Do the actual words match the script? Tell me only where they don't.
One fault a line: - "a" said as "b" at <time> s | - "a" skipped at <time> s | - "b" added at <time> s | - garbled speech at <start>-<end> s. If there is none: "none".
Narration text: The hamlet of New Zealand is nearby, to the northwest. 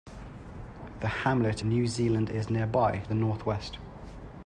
- "of" skipped at 1.6 s
- "to" skipped at 3.0 s